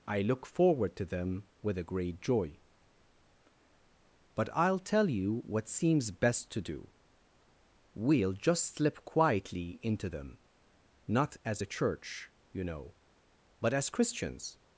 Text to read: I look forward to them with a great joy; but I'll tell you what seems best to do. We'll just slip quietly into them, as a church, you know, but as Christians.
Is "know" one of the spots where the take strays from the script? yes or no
no